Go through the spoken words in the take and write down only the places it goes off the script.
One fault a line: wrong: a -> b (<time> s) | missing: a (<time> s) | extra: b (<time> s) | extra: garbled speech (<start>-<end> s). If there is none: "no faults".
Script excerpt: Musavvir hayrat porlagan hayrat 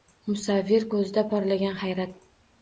wrong: hayrat -> ko'zida (0.9 s)